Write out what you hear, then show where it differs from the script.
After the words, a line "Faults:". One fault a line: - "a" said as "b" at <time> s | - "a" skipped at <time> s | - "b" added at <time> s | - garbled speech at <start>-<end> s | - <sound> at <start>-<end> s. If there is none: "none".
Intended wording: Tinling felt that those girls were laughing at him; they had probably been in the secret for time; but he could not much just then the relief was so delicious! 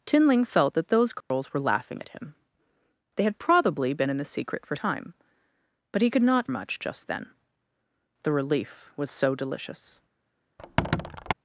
Tinling felt that those girls were laughing at him; they had probably been in the secret for time; but he could not much just then the relief was so delicious!
Faults:
- dropout at 1.2-1.3 s
- squeak at 10.6-11.3 s